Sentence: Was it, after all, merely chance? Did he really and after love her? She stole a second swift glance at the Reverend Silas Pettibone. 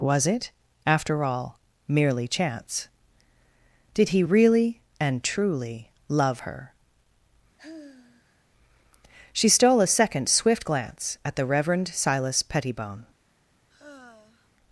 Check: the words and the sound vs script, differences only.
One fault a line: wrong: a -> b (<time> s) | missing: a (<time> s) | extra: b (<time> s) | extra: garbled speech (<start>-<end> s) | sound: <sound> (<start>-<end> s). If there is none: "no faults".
wrong: after -> truly (5.2 s)
sound: sigh (7.6-8.4 s)
sound: sigh (13.7-14.5 s)